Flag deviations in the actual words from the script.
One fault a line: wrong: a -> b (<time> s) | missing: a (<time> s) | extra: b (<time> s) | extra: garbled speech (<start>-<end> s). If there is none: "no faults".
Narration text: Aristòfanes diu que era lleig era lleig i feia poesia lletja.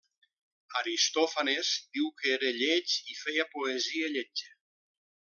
missing: era lleig (3.0 s)